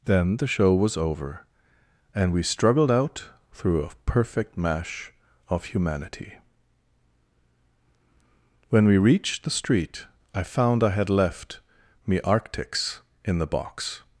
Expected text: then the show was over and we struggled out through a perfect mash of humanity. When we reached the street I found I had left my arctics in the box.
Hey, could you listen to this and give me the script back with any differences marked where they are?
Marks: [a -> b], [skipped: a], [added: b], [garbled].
then the show was over and we struggled out through a perfect mash of humanity. When we reached the street I found I had left [my -> me] arctics in the box.